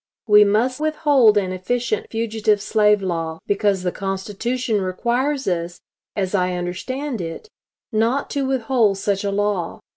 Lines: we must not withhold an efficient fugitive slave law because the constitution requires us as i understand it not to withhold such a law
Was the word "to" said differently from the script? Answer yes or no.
no